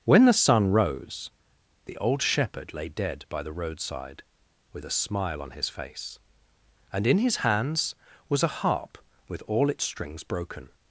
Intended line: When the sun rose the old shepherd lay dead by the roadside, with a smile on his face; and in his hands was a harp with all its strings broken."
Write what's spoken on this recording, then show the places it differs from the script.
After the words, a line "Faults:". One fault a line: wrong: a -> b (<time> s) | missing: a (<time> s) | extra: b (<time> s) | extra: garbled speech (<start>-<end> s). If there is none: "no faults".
When the sun rose the old shepherd lay dead by the roadside, with a smile on his face; and in his hands was a harp with all its strings broken."
Faults:
no faults